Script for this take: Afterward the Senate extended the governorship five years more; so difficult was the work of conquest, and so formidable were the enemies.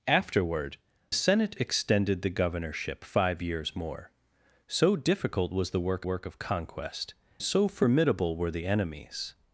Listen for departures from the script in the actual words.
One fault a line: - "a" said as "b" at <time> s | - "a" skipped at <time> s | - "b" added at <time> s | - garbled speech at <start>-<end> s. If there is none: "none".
- "the" skipped at 0.8 s
- "work" added at 6.0 s
- "and" skipped at 7.1 s